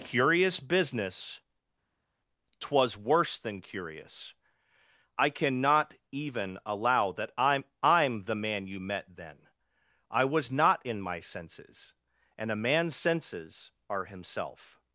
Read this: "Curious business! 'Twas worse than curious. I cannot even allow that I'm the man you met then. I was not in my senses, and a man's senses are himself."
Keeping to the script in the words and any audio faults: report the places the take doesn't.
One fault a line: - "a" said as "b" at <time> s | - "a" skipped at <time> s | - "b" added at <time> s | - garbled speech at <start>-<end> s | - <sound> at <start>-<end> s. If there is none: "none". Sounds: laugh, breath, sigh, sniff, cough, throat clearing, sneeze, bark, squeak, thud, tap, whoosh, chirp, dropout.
- "I'm" added at 7.8 s